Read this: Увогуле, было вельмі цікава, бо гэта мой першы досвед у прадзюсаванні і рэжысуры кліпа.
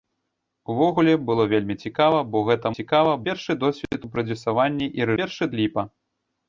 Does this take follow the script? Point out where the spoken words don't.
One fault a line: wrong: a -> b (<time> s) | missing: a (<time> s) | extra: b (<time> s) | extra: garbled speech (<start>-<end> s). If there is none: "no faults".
wrong: мой -> цікава (2.8 s)
wrong: рэжысуры -> першы (5.2 s)